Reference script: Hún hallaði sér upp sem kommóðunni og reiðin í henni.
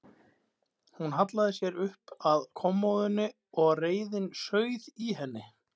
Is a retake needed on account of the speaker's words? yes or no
yes